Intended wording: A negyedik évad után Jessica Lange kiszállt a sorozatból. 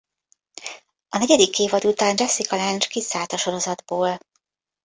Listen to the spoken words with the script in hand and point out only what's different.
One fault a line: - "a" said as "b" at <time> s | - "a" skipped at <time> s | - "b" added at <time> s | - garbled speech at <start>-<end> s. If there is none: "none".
none